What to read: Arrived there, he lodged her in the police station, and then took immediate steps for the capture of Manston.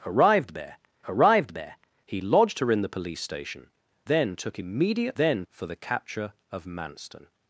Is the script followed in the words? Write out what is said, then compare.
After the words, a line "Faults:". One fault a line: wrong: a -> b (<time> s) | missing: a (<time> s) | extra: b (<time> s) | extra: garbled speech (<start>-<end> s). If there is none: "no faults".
Arrived there arrived there, he lodged her in the police station, then took immediate then for the capture of Manston.
Faults:
extra: arrived there (1.1 s)
missing: and (3.7 s)
wrong: steps -> then (5.2 s)